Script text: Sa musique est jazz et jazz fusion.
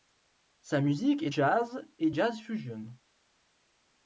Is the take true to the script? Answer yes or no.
yes